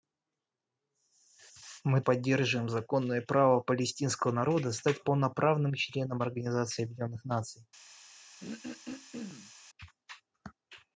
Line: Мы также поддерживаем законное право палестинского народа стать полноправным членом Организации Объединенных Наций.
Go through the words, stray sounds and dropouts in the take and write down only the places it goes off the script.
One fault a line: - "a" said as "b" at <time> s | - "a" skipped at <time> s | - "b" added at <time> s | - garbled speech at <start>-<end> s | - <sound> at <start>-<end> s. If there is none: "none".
- "также" skipped at 2.0 s
- throat clearing at 8.4-9.5 s